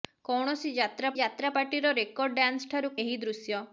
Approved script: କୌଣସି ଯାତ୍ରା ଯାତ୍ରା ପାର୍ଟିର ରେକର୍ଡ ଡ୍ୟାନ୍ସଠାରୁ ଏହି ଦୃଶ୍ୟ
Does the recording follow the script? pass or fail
pass